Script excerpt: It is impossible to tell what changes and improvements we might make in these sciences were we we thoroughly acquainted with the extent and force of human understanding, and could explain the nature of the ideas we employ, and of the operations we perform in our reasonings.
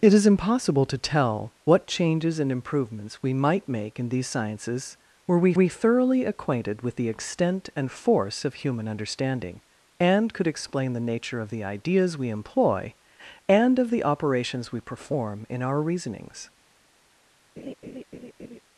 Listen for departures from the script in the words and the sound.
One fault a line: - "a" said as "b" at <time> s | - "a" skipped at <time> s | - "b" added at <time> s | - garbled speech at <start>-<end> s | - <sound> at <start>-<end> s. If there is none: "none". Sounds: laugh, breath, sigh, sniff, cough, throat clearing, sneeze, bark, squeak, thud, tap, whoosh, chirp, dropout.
- laugh at 17.6-18.6 s